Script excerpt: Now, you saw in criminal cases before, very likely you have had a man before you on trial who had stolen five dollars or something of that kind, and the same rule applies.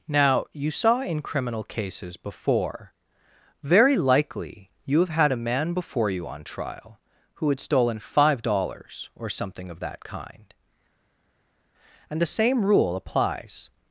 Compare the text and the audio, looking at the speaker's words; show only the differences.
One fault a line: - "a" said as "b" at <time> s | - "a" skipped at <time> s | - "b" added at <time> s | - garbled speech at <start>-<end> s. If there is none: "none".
none